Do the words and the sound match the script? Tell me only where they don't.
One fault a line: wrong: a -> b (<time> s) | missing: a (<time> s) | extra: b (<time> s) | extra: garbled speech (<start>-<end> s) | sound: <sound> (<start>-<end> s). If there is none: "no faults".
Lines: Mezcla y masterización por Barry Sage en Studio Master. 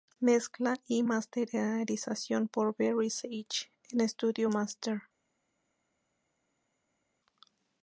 no faults